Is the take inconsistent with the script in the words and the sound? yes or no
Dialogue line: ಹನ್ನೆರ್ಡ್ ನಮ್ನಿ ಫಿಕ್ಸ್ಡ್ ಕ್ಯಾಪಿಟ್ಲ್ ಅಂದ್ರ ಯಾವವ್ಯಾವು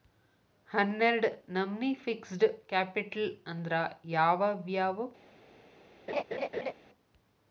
yes